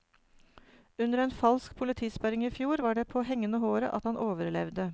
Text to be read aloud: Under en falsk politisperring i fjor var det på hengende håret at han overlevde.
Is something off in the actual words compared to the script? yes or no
no